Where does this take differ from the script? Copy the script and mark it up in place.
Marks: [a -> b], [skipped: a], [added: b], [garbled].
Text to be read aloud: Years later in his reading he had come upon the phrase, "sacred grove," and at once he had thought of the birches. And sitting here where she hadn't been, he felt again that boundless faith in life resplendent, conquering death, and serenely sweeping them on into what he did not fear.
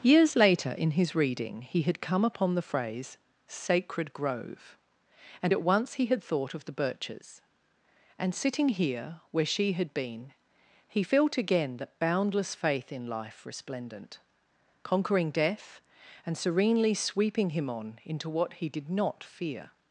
Years later in his reading he had come upon the phrase, "sacred grove," and at once he had thought of the birches. And sitting here where she [hadn't -> had] been, he felt again that boundless faith in life resplendent, conquering death, and serenely sweeping [them -> him] on into what he did not fear.